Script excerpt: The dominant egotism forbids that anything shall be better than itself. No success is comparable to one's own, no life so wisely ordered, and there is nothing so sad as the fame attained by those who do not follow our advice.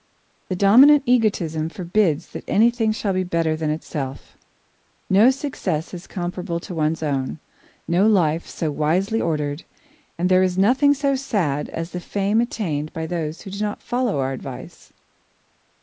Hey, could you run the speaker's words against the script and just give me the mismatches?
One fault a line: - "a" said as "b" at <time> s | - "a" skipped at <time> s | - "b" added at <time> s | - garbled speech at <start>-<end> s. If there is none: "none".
none